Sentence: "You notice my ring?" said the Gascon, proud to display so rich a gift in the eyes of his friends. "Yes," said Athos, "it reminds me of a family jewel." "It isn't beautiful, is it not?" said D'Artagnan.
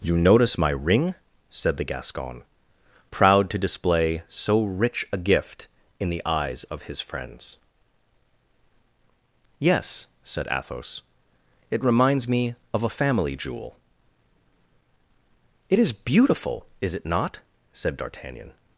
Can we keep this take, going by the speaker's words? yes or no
no